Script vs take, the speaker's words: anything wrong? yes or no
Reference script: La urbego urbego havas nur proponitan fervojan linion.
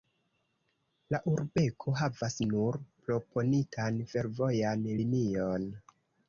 yes